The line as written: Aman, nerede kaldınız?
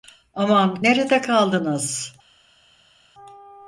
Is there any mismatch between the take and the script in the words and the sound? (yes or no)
no